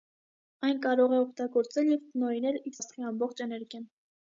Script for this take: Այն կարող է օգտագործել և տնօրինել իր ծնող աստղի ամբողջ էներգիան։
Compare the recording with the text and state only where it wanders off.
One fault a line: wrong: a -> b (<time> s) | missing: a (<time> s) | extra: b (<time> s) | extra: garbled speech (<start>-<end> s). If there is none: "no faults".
missing: ծնող (2.8 s)